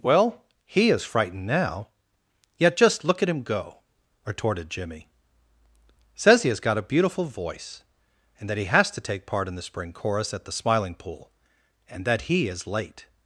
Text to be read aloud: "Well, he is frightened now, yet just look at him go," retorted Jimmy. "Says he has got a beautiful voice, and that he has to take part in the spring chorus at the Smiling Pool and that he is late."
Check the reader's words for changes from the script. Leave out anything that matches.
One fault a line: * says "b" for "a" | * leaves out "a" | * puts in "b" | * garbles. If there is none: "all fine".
all fine